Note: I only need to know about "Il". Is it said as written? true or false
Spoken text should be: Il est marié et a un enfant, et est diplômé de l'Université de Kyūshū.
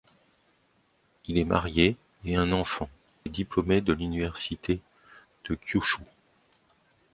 true